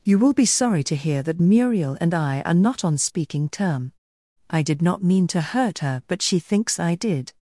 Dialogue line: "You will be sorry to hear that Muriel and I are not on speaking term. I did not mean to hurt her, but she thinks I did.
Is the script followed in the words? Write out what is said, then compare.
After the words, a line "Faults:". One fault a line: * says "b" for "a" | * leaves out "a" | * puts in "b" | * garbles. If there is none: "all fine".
"You will be sorry to hear that Muriel and I are not on speaking term. I did not mean to hurt her, but she thinks I did.
Faults:
all fine